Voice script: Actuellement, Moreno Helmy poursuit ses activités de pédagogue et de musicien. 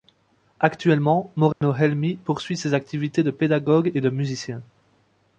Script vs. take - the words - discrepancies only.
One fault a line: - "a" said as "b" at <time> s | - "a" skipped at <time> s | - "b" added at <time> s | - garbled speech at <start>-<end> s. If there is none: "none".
none